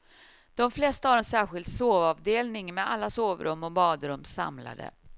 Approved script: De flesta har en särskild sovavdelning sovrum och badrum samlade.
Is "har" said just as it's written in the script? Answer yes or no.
yes